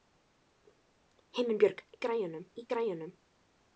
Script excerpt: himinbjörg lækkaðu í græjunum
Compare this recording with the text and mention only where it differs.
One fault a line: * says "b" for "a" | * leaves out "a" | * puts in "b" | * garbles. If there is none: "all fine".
* says "græjunum" for "lækkaðu"